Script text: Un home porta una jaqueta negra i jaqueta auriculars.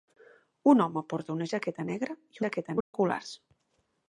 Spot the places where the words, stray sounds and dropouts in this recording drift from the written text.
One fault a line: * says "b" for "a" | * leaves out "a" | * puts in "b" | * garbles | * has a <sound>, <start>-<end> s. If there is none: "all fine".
* has a dropout, 2.8-2.9 s